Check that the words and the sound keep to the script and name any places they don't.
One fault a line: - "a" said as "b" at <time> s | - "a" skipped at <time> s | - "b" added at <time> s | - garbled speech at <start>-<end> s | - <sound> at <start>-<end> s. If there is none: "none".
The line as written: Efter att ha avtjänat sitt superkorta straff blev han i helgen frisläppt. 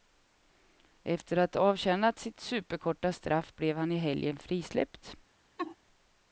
- laugh at 5.6-5.8 s